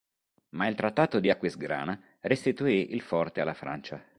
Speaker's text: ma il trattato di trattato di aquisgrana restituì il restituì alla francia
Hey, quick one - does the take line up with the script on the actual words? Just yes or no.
no